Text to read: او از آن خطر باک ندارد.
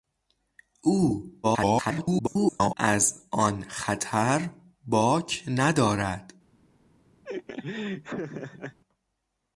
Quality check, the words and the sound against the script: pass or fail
fail